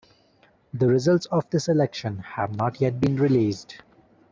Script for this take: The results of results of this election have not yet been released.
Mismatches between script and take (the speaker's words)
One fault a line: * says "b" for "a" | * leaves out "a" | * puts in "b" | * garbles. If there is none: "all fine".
* leaves out "results of"